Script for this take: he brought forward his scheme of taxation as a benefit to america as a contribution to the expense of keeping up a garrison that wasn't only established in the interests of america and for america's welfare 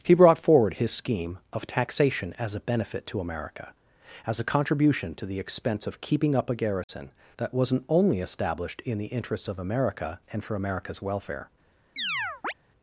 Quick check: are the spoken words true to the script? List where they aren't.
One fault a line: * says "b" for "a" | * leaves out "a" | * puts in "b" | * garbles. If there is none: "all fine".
all fine